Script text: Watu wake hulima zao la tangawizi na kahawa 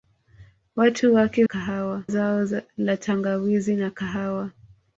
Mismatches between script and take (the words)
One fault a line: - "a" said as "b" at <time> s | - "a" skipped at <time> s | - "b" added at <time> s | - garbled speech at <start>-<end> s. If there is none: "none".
- "hulima" said as "kahawa" at 1.4 s